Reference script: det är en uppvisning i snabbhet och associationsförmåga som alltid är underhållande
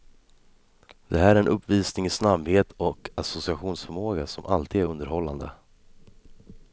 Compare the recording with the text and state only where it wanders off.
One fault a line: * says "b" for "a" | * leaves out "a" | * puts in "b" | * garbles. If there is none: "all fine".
* puts in "här"